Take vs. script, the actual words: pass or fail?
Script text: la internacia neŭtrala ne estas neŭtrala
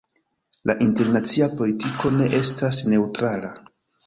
fail